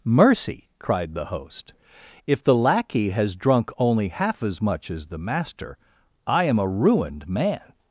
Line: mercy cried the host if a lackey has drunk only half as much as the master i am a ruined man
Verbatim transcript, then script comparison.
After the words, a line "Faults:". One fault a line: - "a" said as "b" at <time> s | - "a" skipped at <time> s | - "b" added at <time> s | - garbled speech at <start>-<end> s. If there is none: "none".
mercy cried the host if the lackey has drunk only half as much as the master i am a ruined man
Faults:
- "a" said as "the" at 2.4 s